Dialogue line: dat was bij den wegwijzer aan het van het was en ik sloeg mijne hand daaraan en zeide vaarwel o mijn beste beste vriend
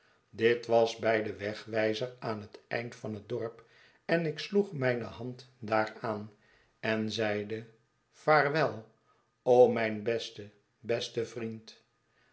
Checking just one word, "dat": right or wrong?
wrong